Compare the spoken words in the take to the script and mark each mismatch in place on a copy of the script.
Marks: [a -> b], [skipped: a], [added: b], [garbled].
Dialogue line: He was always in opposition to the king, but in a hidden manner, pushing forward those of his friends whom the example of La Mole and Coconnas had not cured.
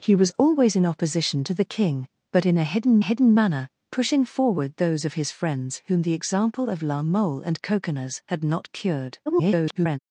He was always in opposition to the king, but in a hidden [added: hidden] manner, pushing forward those of his friends whom the example of La Mole and Coconnas had not cured. [garbled]